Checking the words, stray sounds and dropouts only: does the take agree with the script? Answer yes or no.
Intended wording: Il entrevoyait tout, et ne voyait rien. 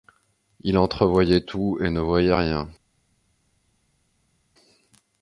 yes